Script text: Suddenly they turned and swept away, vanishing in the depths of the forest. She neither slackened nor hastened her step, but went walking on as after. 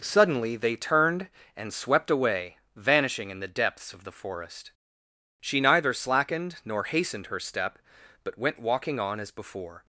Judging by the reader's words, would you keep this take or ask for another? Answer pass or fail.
fail